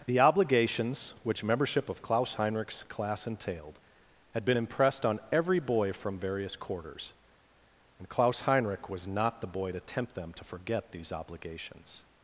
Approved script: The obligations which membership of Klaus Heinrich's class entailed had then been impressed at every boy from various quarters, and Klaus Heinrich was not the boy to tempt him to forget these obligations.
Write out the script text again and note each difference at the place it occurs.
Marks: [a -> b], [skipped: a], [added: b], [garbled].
The obligations which membership of Klaus Heinrich's class entailed had [skipped: then] been impressed [at -> on] every boy from various quarters, and Klaus Heinrich was not the boy to tempt [him -> them] to forget these obligations.